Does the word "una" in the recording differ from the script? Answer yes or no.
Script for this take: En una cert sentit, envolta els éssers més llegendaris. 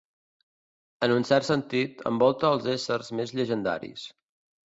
yes